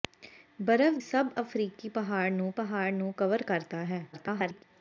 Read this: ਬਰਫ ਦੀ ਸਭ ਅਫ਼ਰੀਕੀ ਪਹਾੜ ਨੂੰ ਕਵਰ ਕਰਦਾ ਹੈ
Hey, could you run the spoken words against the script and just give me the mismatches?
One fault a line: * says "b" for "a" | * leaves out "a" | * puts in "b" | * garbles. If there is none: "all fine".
* leaves out "ਦੀ"
* puts in "ਪਹਾੜ ਨੂੰ"
* garbles